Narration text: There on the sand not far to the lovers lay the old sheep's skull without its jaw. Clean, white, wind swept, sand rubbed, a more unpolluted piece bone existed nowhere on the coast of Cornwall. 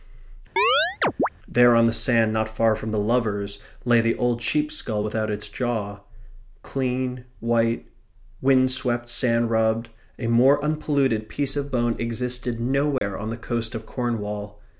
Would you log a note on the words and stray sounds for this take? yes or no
yes